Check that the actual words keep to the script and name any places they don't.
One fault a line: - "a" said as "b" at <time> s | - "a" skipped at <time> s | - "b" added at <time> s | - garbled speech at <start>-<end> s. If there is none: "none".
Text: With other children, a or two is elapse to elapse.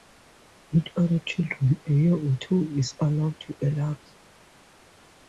- "year" added at 1.9 s
- "elapse" said as "allowed" at 3.0 s